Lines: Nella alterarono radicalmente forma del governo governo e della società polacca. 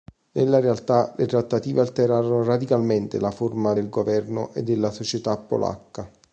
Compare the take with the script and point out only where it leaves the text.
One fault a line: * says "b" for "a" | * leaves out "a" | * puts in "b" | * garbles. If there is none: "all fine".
* puts in "realtà le trattative"
* puts in "la"
* leaves out "governo"